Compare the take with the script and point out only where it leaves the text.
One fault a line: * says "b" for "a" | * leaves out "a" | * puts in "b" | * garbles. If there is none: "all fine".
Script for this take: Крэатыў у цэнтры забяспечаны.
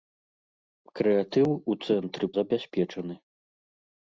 all fine